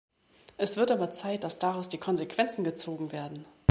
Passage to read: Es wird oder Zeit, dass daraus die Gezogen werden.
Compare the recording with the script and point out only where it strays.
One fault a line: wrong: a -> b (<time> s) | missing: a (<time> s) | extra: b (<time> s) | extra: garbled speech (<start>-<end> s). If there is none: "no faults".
wrong: oder -> aber (0.9 s)
extra: Konsequenzen (2.0 s)